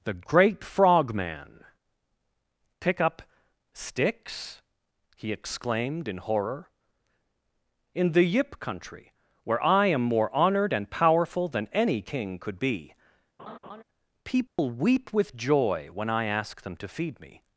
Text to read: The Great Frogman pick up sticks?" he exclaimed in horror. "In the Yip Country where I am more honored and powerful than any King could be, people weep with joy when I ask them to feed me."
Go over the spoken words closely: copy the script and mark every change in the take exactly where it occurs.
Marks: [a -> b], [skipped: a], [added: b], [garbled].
The Great Frogman pick up sticks?" he exclaimed in horror. "In the Yip Country where I am more honored and powerful than any King could be, people weep with joy when I ask them to feed me."